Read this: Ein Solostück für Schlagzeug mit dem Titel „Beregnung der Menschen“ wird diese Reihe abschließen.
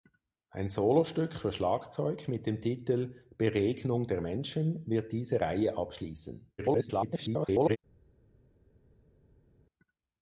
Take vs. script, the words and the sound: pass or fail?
fail